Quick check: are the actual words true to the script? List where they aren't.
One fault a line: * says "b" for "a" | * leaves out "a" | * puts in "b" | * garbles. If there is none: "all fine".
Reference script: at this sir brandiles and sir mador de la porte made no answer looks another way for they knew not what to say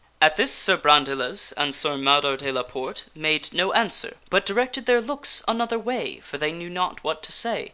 * puts in "but directed their"